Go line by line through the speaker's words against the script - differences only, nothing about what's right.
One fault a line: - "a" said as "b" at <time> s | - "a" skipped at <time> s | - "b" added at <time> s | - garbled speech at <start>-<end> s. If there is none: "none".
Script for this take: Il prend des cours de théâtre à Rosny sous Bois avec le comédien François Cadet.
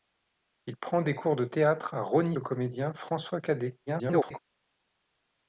- "sous Bois avec" skipped at 2.4 s
- garbled speech at 3.9-4.4 s